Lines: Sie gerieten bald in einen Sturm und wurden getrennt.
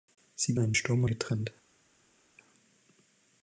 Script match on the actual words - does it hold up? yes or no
no